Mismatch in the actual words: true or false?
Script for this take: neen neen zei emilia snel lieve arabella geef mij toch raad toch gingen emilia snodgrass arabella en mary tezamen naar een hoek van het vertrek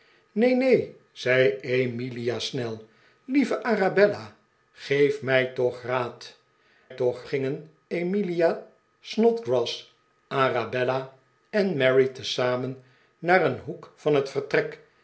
false